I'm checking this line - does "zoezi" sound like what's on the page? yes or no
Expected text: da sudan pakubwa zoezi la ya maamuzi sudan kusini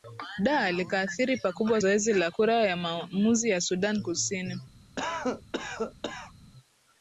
yes